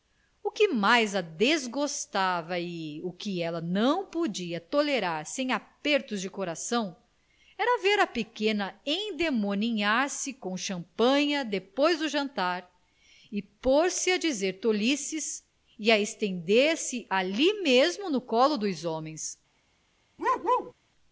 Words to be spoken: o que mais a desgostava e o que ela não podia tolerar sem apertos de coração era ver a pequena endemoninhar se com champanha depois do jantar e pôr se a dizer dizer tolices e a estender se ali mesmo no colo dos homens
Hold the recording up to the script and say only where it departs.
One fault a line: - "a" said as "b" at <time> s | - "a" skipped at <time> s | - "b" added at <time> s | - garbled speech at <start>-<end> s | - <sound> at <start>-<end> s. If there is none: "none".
- "dizer" skipped at 14.5 s
- bark at 20.2-20.7 s